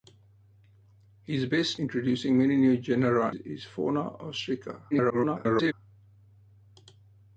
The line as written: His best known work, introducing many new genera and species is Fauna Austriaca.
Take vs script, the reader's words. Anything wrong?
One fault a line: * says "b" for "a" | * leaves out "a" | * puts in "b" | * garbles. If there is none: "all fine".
* leaves out "known work"
* leaves out "and species"
* garbles